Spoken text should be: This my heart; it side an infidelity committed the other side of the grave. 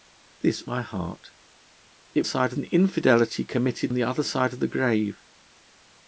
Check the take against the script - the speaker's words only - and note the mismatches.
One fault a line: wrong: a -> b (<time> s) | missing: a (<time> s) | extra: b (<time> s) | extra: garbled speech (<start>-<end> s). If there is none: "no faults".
no faults